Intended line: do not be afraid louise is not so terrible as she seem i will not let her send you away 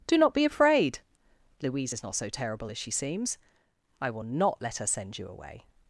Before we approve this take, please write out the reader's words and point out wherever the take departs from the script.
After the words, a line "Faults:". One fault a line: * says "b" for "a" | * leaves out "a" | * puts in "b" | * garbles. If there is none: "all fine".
do not be afraid louise is not so terrible as she seems i will not let her send you away
Faults:
* says "seems" for "seem"